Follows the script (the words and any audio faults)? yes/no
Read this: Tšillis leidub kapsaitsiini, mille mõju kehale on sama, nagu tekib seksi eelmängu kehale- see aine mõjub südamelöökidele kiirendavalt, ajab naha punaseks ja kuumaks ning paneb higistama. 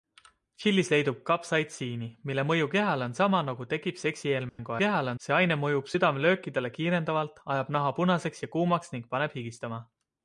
no